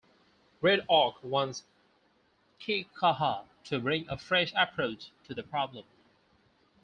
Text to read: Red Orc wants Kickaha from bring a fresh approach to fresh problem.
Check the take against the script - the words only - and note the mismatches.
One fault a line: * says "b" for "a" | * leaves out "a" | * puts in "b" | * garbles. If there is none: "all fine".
* says "to" for "from"
* says "the" for "fresh"